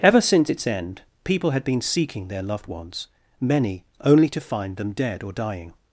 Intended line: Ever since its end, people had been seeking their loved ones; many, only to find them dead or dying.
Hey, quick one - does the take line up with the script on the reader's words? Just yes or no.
yes